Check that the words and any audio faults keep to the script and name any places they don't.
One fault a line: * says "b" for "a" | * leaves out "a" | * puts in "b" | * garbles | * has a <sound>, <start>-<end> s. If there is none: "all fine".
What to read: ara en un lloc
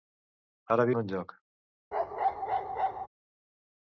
* has a bark, 1.9-3.1 s